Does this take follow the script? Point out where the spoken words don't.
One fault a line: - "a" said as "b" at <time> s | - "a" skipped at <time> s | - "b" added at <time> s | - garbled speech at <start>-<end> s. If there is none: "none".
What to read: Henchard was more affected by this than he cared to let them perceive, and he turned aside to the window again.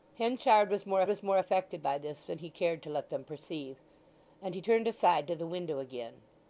- "was more" added at 1.1 s